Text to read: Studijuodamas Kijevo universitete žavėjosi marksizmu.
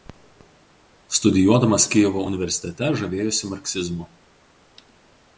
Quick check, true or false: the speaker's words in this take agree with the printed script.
true